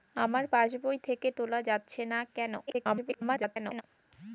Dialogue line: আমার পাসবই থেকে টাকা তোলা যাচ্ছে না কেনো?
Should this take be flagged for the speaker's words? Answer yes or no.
yes